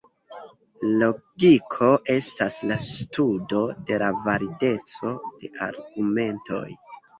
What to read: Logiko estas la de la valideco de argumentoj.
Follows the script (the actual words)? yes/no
no